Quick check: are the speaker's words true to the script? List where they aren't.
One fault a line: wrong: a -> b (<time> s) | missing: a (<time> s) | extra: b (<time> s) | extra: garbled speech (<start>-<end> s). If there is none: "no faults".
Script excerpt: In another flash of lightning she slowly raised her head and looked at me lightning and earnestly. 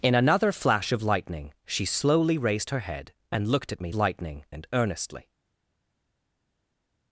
no faults